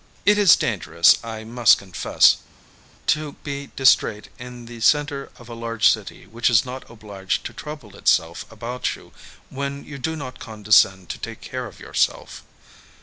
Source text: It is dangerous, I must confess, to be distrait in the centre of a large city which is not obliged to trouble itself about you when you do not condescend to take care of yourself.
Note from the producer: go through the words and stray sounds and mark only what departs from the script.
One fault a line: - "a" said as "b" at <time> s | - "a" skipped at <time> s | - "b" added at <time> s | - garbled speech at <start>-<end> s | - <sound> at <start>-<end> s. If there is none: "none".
none